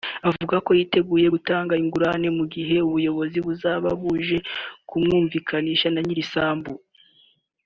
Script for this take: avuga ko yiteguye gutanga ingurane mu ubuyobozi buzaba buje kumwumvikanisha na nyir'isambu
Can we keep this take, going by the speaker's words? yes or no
no